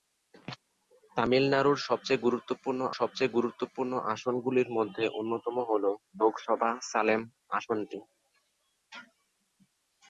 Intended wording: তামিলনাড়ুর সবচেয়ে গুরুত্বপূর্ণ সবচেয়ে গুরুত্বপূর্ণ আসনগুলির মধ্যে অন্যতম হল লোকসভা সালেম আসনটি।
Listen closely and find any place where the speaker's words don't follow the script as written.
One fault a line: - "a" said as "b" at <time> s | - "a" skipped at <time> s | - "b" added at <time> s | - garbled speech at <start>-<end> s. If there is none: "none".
none